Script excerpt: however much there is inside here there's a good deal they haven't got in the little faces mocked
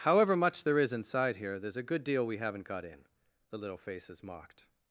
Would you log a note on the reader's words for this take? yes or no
yes